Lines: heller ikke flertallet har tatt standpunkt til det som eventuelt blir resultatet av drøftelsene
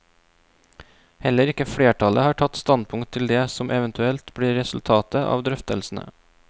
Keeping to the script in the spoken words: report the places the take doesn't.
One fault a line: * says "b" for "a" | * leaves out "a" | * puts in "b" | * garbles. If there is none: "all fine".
all fine